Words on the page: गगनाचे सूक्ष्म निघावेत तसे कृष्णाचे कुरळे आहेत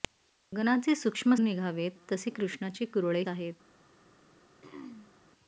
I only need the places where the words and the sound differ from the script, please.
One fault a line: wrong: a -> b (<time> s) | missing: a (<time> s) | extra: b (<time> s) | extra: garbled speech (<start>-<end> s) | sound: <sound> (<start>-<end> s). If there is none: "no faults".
sound: throat clearing (4.6-5.1 s)